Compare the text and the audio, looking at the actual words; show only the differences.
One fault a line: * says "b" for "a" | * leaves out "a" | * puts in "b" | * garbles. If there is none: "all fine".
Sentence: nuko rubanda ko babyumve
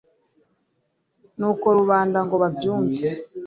* says "ngo" for "ko"